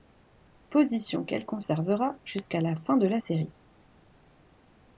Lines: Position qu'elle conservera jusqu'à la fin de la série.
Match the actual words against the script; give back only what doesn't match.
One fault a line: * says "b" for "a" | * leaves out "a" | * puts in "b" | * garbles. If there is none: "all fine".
all fine